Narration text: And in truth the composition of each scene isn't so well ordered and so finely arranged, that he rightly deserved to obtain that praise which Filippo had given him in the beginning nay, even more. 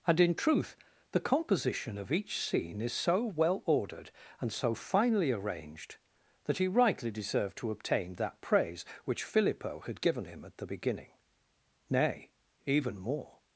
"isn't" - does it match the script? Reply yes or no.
no